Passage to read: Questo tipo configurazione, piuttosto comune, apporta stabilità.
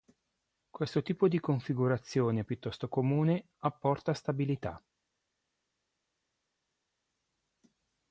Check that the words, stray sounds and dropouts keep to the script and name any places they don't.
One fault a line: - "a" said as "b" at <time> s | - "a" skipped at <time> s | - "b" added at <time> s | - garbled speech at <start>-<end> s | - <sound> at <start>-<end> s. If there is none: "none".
- "di" added at 1.3 s